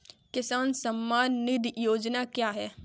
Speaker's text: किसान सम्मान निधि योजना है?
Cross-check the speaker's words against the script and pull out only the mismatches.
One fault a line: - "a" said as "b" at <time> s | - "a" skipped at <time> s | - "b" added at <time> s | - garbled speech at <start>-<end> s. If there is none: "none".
- "क्या" added at 2.2 s